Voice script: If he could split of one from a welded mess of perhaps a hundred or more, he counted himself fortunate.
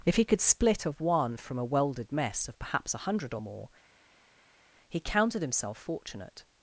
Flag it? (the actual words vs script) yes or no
no